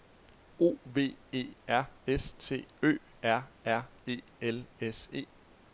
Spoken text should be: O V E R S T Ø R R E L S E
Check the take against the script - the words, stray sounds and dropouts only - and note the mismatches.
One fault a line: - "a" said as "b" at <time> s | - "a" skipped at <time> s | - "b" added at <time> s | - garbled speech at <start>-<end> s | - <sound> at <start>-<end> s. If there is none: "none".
none